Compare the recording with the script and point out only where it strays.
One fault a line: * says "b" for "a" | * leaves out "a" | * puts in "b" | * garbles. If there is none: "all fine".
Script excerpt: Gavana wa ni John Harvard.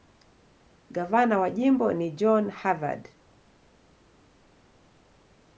* puts in "jimbo"